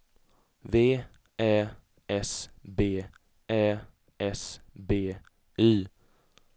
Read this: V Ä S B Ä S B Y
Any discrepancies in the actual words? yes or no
no